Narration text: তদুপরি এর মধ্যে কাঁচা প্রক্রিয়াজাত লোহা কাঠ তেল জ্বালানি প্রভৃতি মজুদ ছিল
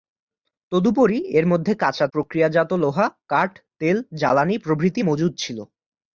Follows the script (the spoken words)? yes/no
yes